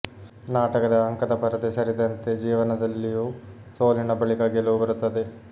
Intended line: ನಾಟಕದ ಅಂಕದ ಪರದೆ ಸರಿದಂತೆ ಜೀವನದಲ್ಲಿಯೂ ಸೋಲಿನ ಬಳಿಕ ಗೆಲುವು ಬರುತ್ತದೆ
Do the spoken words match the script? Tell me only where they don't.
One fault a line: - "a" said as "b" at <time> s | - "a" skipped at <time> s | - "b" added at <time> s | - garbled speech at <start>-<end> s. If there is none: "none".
none